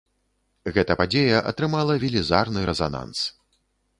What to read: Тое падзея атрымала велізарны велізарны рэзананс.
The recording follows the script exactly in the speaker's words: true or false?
false